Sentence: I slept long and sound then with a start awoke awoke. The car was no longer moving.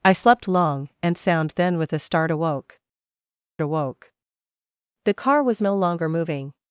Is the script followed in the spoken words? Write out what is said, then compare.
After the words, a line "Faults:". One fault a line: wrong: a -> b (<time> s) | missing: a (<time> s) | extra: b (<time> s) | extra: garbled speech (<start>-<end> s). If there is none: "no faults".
I slept long and sound then with a start awoke awoke. The car was no longer moving.
Faults:
no faults